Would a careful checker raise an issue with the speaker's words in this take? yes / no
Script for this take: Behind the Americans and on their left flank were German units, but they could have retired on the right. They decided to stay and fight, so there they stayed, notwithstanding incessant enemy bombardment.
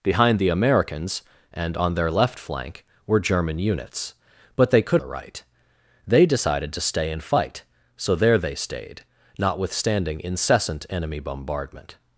yes